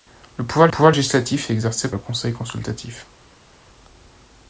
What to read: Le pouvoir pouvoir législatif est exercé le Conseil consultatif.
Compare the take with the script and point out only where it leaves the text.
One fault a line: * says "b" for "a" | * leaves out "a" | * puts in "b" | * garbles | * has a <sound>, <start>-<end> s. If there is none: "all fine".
all fine